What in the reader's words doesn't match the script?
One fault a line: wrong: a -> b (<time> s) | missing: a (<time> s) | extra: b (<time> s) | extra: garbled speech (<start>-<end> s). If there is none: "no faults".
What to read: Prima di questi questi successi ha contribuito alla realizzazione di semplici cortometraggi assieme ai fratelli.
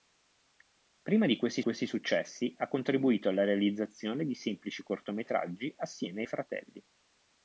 no faults